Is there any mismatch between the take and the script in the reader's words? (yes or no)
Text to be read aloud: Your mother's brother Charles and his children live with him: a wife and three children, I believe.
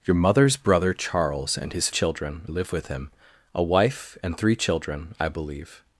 no